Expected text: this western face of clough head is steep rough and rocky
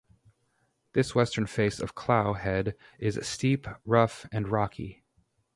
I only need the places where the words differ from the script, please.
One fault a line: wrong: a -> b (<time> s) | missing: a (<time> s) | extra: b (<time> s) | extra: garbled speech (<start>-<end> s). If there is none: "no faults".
no faults